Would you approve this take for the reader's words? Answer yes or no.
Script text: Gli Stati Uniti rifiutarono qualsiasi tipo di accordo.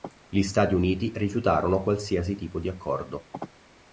yes